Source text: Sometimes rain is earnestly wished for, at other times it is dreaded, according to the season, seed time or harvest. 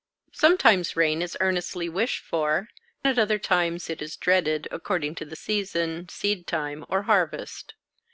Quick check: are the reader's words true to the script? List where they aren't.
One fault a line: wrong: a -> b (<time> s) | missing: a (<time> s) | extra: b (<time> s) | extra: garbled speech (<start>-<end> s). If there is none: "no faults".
no faults